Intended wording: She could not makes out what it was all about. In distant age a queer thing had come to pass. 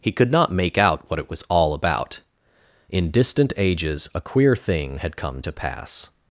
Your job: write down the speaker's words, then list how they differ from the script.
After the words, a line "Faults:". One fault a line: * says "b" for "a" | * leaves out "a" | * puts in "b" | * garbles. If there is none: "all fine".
He could not make out what it was all about. In distant ages a queer thing had come to pass.
Faults:
* says "He" for "She"
* says "make" for "makes"
* says "ages" for "age"